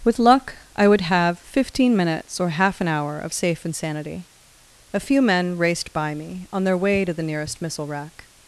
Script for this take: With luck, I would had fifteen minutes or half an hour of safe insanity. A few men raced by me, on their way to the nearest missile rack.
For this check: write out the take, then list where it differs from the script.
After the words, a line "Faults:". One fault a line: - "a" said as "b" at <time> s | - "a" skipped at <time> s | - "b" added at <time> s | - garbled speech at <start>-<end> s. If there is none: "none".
With luck, I would have fifteen minutes or half an hour of safe insanity. A few men raced by me, on their way to the nearest missile rack.
Faults:
- "had" said as "have" at 1.0 s